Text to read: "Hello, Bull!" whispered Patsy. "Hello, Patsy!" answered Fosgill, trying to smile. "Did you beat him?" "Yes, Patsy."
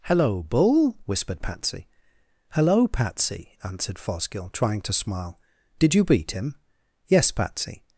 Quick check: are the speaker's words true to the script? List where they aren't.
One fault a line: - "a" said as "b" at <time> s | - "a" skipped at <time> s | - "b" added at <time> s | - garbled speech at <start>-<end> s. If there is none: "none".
none